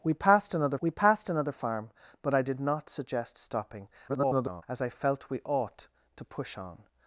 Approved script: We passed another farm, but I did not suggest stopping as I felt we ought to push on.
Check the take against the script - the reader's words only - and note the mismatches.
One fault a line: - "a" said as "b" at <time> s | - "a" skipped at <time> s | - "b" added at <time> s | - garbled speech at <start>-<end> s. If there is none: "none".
- "we passed another" added at 0.8 s
- garbled speech at 4.1-4.6 s